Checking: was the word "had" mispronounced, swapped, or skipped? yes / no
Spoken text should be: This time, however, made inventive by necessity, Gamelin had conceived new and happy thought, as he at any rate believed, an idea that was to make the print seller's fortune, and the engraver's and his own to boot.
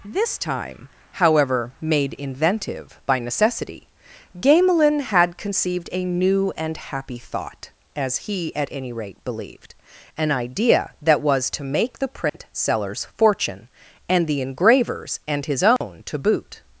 no